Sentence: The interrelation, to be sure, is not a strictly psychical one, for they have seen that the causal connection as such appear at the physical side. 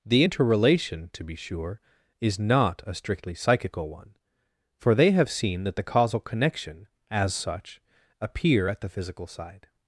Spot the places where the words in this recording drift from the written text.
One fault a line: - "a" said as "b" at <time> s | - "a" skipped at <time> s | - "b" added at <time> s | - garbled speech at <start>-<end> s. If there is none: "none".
none